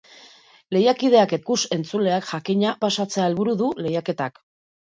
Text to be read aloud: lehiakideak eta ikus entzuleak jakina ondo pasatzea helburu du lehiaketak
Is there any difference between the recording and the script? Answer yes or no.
yes